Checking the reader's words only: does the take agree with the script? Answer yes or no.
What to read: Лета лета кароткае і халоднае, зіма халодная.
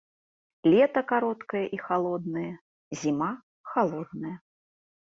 no